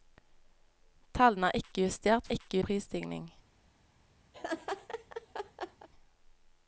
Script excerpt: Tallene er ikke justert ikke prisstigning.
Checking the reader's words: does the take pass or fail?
pass